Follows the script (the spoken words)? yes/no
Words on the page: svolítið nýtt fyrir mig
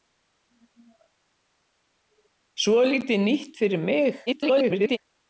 no